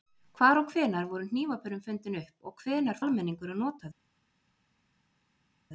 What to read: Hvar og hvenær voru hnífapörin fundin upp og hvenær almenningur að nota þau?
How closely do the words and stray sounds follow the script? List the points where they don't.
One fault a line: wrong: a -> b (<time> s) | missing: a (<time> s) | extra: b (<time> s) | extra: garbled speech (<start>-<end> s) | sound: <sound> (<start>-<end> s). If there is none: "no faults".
no faults